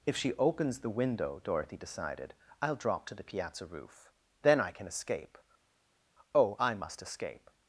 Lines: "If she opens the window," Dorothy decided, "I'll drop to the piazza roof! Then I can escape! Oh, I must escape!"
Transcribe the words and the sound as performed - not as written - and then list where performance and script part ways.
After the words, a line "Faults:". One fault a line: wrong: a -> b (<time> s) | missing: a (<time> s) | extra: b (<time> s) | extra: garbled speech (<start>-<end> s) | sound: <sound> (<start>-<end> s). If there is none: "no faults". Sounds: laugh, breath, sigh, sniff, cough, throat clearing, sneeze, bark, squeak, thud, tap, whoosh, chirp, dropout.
"If she opens the window," Dorothy decided, "I'll drop to the piazza roof! Then I can escape! Oh, I must escape!"
Faults:
no faults